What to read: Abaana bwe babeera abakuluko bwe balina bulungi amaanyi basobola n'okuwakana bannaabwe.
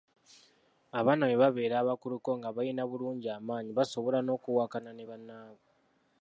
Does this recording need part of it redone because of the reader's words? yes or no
yes